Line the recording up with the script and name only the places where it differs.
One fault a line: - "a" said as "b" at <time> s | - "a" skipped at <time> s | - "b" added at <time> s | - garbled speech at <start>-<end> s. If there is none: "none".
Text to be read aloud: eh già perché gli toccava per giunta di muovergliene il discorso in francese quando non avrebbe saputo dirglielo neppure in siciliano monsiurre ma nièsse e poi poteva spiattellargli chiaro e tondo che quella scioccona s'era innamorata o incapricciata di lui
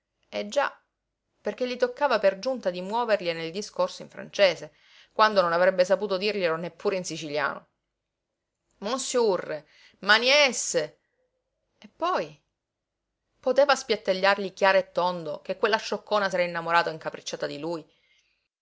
none